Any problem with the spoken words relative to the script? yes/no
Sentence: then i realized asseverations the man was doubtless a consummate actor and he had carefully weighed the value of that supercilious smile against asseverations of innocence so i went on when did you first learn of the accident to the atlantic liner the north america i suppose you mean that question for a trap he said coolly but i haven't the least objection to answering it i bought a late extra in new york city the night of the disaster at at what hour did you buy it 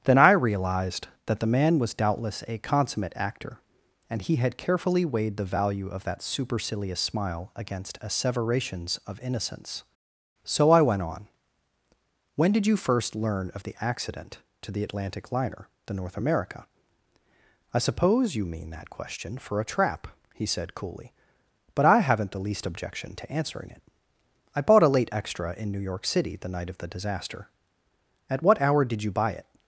yes